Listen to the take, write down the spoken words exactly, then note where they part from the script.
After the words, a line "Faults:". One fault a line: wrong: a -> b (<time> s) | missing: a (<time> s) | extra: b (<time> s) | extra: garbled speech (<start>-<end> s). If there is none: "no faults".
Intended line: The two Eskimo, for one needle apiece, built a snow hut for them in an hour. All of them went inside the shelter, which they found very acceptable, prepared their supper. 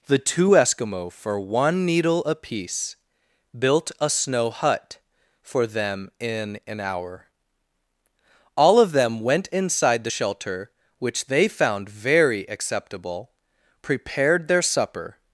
The two Eskimo, for one needle apiece, built a snow hut for them in an hour. All of them went inside the shelter, which they found very acceptable, prepared their supper.
Faults:
no faults